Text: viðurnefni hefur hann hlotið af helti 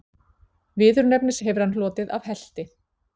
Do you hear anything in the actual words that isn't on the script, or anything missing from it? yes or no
no